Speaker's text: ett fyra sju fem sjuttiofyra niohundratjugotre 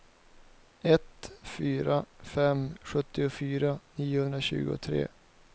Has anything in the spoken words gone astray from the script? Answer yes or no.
yes